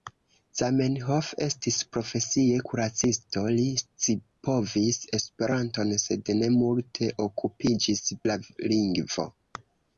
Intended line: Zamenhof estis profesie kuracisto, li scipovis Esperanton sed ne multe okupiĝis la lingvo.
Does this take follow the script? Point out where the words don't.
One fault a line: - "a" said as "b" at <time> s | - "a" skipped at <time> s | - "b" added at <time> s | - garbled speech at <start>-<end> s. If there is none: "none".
none